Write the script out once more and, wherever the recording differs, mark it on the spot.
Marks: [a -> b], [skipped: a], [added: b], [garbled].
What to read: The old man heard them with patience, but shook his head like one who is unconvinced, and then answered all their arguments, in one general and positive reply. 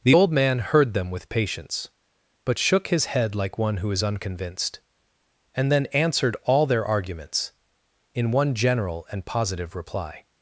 The old man heard them with patience, but shook his head like one who is unconvinced, and then answered all their arguments, in one general and positive reply.